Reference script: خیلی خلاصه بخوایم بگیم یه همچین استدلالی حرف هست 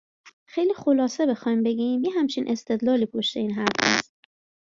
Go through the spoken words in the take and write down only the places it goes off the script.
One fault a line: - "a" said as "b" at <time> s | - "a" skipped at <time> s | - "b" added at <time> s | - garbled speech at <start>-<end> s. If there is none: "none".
- "پشت این" added at 3.1 s